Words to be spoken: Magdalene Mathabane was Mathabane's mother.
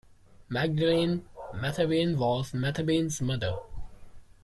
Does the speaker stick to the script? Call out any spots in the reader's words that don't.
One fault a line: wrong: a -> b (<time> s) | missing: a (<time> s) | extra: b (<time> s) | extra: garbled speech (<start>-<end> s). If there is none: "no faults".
no faults